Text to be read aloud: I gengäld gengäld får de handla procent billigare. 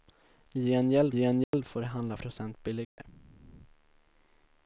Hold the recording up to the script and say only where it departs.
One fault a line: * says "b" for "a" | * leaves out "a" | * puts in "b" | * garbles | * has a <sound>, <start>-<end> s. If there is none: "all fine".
* has a dropout, 1.4-1.5 s
* has a dropout, 2.8-3.0 s